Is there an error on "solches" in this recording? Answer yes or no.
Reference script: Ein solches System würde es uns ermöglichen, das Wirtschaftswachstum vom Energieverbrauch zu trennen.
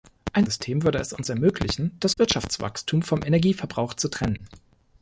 yes